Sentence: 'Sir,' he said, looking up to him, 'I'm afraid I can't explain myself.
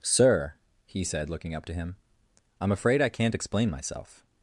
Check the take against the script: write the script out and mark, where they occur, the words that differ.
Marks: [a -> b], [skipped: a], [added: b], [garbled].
'Sir,' he said, looking up to him, 'I'm afraid I can't explain myself.